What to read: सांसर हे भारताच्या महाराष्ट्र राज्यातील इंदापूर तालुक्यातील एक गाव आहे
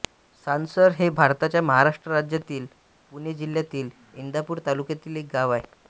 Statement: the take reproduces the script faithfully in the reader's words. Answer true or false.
false